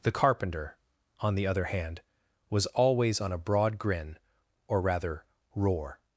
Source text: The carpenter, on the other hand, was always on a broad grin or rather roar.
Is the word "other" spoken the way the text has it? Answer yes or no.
yes